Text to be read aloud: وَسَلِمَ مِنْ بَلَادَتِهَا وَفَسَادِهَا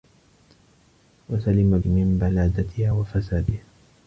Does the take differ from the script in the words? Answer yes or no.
no